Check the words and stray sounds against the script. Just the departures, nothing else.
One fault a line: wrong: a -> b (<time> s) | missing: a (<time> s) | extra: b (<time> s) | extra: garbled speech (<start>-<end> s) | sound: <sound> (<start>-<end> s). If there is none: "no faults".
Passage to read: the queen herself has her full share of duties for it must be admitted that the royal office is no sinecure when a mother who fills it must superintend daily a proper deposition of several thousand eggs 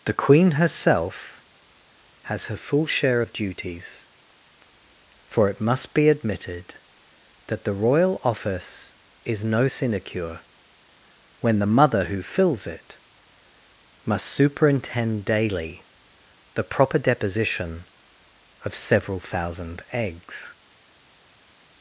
wrong: a -> the (11.6 s)
wrong: a -> the (16.5 s)